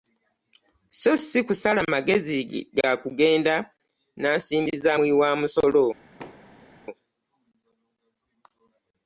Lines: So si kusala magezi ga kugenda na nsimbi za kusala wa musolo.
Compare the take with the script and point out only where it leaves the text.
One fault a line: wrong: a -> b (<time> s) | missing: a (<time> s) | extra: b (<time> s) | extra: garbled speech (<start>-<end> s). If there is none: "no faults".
wrong: kusala -> muwi (4.9 s)